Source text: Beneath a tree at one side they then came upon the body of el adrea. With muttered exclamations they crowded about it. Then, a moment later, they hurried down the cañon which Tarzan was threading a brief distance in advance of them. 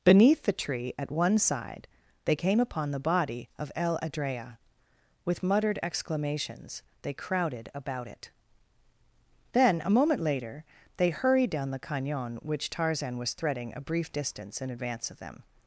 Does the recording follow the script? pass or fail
fail